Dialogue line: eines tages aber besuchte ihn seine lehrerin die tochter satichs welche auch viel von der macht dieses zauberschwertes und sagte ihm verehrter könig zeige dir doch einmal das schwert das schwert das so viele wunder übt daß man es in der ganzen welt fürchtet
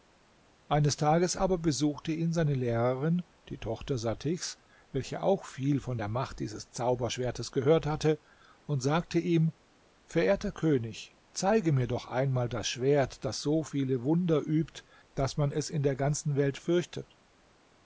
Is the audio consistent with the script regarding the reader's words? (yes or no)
no